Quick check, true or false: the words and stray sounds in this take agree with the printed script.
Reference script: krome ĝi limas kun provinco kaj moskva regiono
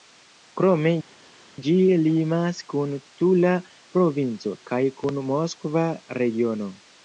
false